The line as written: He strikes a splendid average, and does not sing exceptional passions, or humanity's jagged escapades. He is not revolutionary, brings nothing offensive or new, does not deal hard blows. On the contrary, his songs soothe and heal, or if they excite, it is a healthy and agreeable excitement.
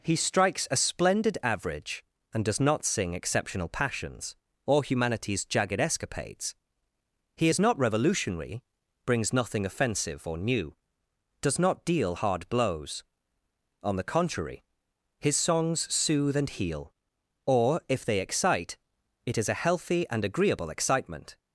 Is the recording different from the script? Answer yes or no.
no